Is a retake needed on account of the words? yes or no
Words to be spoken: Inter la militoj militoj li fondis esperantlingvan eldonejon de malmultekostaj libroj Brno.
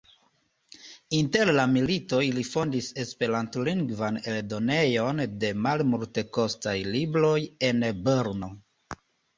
yes